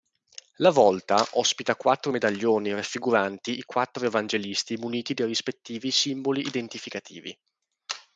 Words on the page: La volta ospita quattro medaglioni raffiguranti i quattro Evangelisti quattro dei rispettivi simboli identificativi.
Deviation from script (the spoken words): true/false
true